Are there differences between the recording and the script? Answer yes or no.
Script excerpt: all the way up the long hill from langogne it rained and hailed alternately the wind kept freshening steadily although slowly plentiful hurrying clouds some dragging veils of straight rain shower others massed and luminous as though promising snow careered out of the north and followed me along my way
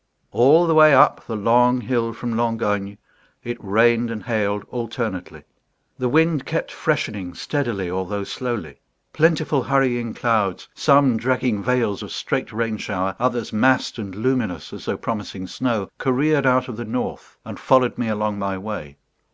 no